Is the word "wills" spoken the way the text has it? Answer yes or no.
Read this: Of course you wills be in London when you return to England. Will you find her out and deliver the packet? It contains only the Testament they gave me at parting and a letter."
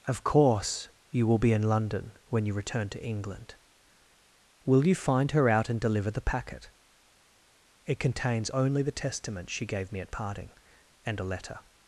no